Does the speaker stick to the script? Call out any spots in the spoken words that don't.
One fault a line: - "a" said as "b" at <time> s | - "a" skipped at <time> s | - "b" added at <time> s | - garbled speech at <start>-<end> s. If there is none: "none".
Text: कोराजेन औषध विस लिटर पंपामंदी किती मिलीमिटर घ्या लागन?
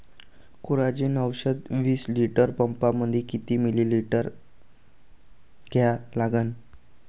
none